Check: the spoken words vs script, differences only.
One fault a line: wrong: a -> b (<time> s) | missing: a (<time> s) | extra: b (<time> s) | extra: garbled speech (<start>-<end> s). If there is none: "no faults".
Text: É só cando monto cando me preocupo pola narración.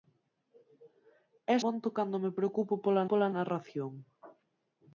missing: só cando (1.6 s)
extra: pola (3.1 s)